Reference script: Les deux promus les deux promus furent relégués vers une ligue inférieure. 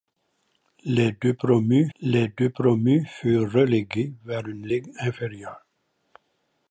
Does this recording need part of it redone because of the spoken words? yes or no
no